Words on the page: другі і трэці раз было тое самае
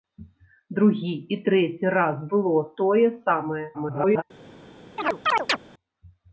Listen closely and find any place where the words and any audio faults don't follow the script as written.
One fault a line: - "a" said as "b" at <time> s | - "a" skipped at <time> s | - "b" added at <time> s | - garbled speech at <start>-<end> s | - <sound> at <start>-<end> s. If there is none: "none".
- garbled speech at 3.7-4.2 s
- chirp at 5.0-5.6 s